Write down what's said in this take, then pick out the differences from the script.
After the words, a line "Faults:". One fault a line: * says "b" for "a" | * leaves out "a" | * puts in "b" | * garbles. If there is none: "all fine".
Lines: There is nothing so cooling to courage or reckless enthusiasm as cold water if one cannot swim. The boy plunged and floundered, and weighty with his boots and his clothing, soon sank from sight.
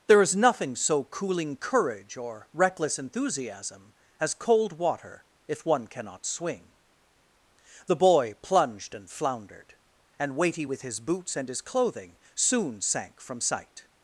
There is nothing so cooling courage or reckless enthusiasm as cold water if one cannot swing. The boy plunged and floundered, and weighty with his boots and his clothing, soon sank from sight.
Faults:
* leaves out "to"
* says "swing" for "swim"